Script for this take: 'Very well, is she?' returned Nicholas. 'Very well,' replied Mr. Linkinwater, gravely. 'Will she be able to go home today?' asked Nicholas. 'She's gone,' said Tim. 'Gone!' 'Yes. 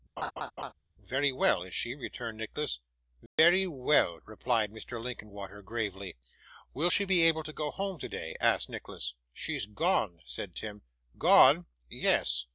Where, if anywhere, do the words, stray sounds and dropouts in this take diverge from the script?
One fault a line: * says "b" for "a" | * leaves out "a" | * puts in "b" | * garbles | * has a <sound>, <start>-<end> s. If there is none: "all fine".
* has a laugh, 0.2-0.7 s
* has a dropout, 3.3-3.4 s